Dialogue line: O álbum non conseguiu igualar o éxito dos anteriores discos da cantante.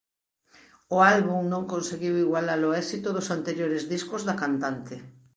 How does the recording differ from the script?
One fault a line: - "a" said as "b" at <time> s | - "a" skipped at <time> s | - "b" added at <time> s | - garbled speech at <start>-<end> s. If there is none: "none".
none